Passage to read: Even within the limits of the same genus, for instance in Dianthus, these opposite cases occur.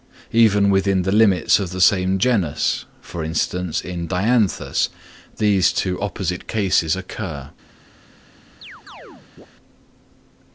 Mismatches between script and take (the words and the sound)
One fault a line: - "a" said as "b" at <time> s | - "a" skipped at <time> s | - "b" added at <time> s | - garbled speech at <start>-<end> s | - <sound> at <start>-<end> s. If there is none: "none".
- "two" added at 5.7 s
- chirp at 8.6-9.5 s